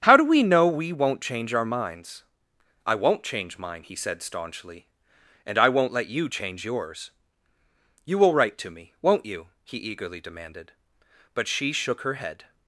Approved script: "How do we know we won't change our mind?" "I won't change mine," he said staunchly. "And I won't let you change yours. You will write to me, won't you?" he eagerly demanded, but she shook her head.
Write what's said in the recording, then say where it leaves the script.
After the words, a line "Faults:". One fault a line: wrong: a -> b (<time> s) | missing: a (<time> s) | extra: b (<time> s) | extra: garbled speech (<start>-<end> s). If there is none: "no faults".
"How do we know we won't change our minds?" "I won't change mine," he said staunchly. "And I won't let you change yours. You will write to me, won't you?" he eagerly demanded, but she shook her head.
Faults:
wrong: mind -> minds (1.6 s)